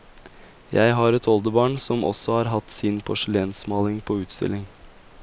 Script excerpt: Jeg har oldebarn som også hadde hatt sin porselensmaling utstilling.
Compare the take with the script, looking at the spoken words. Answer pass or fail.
fail